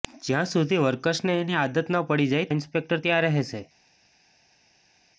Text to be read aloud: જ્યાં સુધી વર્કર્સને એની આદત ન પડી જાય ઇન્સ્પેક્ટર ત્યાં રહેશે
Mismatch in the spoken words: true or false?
false